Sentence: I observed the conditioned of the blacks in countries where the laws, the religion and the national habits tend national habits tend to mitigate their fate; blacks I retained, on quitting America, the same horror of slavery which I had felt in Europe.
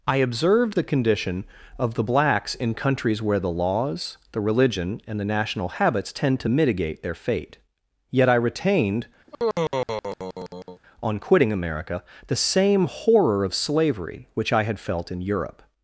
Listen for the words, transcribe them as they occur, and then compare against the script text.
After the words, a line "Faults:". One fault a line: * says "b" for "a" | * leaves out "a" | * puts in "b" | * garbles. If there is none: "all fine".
I observed the condition of the blacks in countries where the laws, the religion and the national habits tend to mitigate their fate; yet I retained, on quitting America, the same horror of slavery which I had felt in Europe.
Faults:
* says "condition" for "conditioned"
* leaves out "national habits tend"
* says "yet" for "blacks"